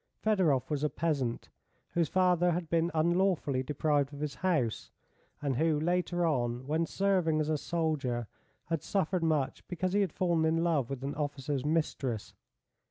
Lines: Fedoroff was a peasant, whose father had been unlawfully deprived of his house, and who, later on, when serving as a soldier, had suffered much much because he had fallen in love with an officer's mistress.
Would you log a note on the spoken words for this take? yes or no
yes